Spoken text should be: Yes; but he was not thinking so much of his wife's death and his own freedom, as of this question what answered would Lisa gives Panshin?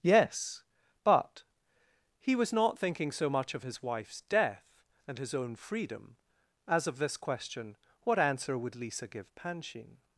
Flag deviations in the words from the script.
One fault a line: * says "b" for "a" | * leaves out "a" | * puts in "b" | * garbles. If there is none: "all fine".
* says "answer" for "answered"
* says "give" for "gives"